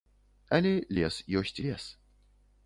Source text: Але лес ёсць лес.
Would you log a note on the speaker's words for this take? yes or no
no